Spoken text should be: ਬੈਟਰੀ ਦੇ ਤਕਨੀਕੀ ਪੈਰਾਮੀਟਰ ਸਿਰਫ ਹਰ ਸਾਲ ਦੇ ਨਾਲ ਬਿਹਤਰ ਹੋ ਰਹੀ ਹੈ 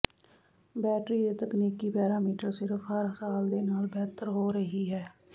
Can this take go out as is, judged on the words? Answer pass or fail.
pass